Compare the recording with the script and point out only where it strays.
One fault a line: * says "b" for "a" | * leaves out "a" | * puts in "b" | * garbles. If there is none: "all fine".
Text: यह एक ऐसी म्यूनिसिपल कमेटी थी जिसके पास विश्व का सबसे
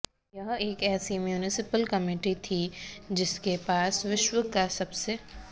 all fine